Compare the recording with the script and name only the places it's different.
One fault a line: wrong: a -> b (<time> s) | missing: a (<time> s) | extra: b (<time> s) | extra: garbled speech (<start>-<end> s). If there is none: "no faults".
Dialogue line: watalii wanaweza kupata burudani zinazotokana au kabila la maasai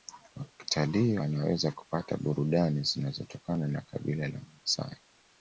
wrong: au -> na (3.7 s)